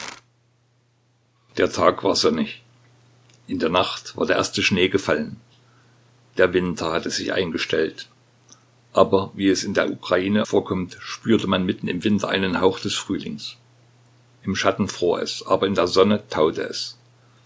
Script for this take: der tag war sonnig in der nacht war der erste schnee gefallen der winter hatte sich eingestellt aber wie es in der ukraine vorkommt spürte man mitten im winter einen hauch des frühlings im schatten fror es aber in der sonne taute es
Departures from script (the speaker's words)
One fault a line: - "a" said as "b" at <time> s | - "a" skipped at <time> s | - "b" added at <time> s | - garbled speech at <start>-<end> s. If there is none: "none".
none